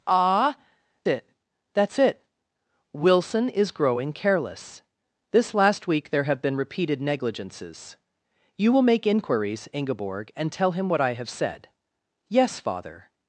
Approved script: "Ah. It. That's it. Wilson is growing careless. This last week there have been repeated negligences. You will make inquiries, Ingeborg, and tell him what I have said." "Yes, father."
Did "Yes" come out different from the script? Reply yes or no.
no